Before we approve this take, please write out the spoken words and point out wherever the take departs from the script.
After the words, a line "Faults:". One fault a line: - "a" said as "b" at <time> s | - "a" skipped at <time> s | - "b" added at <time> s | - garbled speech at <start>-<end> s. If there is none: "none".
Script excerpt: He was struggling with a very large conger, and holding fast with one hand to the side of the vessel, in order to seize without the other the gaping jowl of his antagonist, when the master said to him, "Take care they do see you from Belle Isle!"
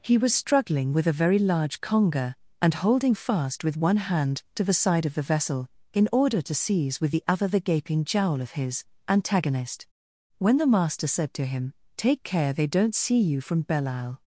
He was struggling with a very large conger, and holding fast with one hand to the side of the vessel, in order to seize with the other the gaping jowl of his antagonist, when the master said to him, "Take care they don't see you from Belle Isle!"
Faults:
- "without" said as "with" at 7.0 s
- "do" said as "don't" at 12.7 s